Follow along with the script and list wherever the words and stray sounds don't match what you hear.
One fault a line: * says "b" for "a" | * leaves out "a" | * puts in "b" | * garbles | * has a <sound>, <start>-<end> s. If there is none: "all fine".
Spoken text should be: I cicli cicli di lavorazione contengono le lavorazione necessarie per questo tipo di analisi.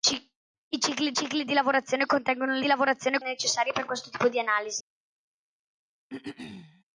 * has a throat clearing, 6.1-6.8 s